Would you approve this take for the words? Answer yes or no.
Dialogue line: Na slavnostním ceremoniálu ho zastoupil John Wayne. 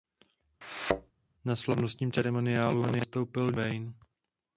no